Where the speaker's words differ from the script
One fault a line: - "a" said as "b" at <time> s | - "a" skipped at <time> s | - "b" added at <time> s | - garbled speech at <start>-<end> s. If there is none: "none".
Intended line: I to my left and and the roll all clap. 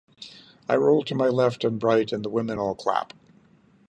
- "roll" added at 0.8 s
- "right" added at 1.8 s
- "roll" said as "women" at 2.3 s